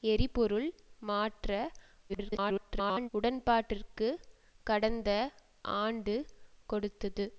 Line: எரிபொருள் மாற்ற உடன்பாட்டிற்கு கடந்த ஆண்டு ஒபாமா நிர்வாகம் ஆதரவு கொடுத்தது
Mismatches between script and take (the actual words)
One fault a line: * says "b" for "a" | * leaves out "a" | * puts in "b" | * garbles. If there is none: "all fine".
* garbles
* leaves out "ஒபாமா நிர்வாகம் ஆதரவு"